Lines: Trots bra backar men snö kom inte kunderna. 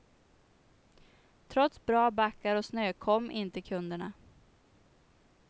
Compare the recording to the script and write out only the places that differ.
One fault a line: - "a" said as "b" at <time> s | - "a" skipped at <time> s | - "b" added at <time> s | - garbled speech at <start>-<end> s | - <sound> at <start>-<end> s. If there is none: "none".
- "men" said as "och" at 2.5 s